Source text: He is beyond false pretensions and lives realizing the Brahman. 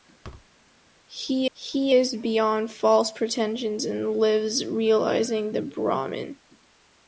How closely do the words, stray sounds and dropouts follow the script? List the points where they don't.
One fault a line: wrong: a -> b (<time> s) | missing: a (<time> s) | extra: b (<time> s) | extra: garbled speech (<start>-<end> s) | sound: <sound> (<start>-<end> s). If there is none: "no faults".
sound: thud (0.2-0.5 s)
extra: he (1.5 s)